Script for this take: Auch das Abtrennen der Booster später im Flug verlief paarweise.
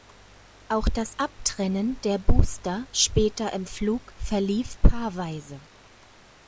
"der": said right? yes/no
yes